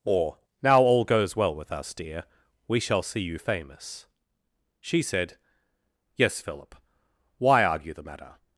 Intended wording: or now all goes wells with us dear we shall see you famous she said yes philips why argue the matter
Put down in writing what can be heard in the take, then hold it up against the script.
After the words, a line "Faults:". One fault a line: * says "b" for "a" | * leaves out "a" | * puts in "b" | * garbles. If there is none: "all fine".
or now all goes well with us dear we shall see you famous she said yes philip why argue the matter
Faults:
* says "well" for "wells"
* says "philip" for "philips"